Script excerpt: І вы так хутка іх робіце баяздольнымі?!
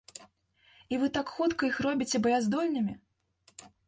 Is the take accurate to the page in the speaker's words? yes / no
yes